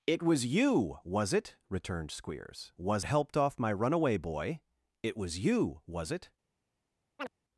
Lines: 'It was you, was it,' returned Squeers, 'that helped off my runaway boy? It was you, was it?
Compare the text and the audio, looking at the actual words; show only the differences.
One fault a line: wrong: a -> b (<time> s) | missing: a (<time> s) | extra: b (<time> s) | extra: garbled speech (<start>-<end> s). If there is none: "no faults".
wrong: that -> was (2.8 s)